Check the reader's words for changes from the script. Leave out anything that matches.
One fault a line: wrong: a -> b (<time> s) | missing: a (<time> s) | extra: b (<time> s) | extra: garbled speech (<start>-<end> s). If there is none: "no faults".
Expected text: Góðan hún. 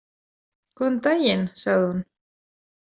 extra: daginn sagði (1.1 s)